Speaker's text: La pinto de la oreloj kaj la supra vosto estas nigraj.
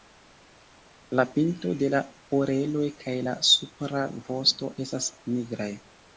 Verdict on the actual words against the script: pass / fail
pass